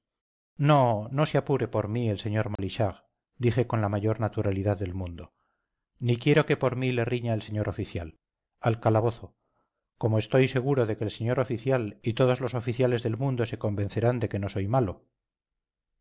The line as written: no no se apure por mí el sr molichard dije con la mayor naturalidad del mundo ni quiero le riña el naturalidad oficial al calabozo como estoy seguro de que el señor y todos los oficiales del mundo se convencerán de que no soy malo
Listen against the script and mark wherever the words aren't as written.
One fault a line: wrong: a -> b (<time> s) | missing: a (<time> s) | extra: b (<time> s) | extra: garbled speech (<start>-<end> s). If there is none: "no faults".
extra: que por mí (6.5 s)
wrong: naturalidad -> señor (7.4 s)
extra: oficial (11.4 s)